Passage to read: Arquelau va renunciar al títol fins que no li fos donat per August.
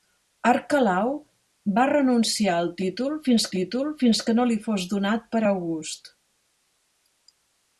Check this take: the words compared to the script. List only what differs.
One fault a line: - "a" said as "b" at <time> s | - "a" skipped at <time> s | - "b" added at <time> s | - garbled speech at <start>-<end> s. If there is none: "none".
- "títol fins" added at 3.6 s